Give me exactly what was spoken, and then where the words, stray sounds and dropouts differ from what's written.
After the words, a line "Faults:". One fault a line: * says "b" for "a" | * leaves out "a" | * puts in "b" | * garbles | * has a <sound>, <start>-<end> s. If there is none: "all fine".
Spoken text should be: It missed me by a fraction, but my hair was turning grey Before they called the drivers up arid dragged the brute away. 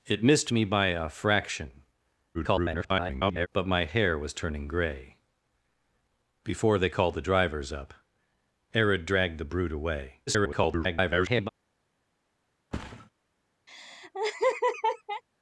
It missed me by a fraction, [garbled] but my hair was turning grey Before they called the drivers up arid dragged the brute away. [garbled]
Faults:
* garbles
* garbles
* has a thud, 12.7-13.1 s
* has a laugh, 13.7-15.2 s